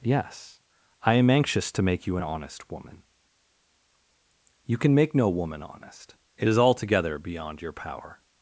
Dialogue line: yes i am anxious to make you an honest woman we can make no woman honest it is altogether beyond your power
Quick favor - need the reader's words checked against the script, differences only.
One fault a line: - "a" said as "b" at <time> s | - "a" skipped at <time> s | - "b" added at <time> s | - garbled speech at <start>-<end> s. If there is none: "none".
- "we" said as "you" at 4.6 s